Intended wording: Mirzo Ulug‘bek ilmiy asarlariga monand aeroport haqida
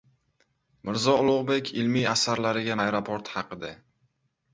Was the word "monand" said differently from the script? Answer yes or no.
yes